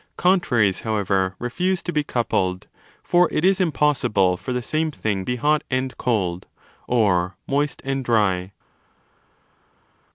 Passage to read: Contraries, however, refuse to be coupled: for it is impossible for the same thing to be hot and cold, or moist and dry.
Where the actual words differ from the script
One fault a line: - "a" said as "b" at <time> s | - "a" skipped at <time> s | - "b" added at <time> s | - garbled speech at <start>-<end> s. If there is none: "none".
- "to" skipped at 5.3 s